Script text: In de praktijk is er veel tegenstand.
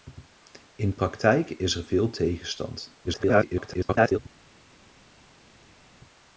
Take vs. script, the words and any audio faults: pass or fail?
fail